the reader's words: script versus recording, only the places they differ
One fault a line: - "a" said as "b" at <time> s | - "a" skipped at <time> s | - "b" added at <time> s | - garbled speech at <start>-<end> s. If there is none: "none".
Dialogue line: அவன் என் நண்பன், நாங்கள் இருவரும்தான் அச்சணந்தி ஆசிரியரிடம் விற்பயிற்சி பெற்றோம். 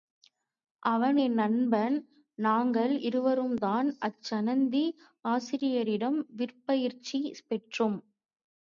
none